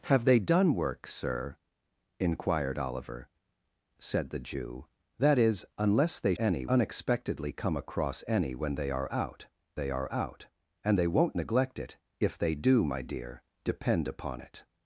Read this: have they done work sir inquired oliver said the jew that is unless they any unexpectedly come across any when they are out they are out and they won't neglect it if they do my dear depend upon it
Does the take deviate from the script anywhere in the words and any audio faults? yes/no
no